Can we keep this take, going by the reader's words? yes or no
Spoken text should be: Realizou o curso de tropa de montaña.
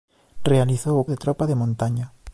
no